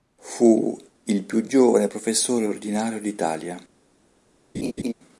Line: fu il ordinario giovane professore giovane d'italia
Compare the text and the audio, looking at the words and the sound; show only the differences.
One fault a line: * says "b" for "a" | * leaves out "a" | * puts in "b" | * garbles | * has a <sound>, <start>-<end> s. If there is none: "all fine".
* says "più" for "ordinario"
* says "ordinario" for "giovane"
* has a laugh, 4.5-4.9 s